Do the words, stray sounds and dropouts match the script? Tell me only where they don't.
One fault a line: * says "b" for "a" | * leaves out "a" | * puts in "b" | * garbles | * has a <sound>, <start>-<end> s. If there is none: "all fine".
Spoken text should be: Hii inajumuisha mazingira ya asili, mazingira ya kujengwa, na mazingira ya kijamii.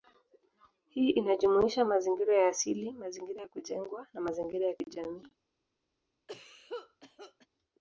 * has a cough, 6.3-7.5 s